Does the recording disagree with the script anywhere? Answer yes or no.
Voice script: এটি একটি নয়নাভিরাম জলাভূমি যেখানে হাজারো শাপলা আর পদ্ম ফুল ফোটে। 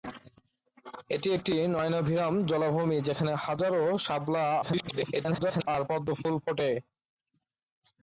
yes